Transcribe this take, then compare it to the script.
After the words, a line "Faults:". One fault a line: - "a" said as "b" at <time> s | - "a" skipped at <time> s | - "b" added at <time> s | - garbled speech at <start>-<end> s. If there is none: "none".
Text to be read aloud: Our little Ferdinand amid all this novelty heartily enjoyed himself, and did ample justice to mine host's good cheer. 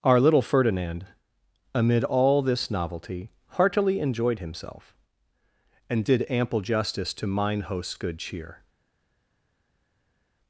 Our little Ferdinand amid all this novelty heartily enjoyed himself, and did ample justice to mine host's good cheer.
Faults:
none